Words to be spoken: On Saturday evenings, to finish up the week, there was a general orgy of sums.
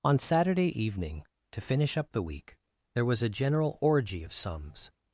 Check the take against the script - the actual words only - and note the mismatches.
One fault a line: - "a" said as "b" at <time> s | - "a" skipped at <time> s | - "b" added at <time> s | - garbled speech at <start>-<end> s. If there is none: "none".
- "evenings" said as "evening" at 0.8 s